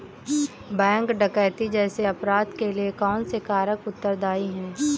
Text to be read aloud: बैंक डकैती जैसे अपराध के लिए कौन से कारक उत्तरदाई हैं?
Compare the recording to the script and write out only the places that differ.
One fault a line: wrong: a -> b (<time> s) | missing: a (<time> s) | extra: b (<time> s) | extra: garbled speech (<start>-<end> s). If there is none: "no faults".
no faults